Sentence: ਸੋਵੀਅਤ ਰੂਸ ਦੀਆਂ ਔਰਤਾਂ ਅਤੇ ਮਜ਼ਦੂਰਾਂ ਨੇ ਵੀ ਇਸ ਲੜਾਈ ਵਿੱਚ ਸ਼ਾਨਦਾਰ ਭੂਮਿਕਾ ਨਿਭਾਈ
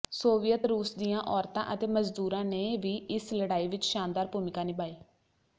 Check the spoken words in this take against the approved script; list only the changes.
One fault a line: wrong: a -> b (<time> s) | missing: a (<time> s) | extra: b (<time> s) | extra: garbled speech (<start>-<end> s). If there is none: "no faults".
no faults